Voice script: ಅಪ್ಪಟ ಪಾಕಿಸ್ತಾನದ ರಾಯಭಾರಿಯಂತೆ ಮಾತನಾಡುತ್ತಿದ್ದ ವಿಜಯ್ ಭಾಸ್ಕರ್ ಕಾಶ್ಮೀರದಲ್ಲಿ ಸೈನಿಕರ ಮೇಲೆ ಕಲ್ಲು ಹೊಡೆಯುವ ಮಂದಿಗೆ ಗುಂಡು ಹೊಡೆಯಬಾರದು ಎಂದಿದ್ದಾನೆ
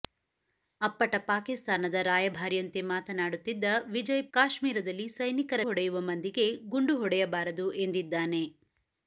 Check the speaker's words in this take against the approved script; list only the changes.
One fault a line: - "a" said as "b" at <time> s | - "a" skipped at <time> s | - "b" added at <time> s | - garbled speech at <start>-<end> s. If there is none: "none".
- "ಭಾಸ್ಕರ್" skipped at 4.2 s
- "ಮೇಲೆ ಕಲ್ಲು" skipped at 5.6 s